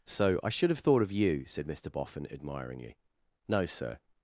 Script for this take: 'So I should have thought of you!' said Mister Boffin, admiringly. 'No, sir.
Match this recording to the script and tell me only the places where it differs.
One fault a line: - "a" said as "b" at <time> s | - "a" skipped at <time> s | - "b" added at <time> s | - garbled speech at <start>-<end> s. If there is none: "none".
none